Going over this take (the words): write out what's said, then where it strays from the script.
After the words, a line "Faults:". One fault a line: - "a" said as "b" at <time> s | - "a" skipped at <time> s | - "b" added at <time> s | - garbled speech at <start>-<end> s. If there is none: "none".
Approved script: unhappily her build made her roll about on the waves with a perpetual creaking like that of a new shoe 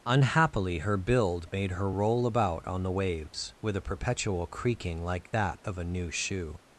unhappily her build made her roll about on the waves with a perpetual creaking like that of a new shoe
Faults:
none